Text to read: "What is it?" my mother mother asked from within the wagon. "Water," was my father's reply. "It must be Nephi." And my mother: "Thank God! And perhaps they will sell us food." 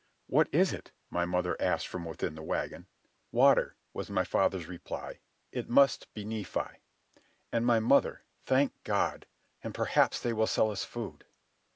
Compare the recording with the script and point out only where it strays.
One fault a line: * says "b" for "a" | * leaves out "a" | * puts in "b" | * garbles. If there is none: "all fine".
* leaves out "mother"